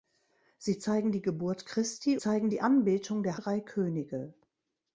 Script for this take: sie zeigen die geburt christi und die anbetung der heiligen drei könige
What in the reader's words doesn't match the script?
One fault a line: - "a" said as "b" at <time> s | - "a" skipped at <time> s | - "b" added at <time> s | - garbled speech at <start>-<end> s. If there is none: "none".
- "und" said as "zeigen" at 2.2 s
- "heiligen" skipped at 3.4 s